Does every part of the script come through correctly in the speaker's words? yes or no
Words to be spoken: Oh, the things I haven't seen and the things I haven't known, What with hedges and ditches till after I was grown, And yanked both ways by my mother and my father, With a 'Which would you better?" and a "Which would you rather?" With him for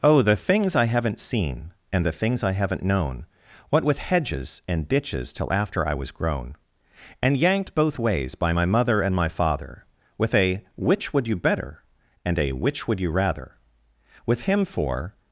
yes